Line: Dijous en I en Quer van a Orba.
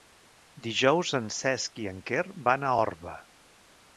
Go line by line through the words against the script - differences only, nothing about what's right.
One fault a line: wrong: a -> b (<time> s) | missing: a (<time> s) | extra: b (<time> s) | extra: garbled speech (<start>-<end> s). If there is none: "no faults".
extra: Cesc (1.4 s)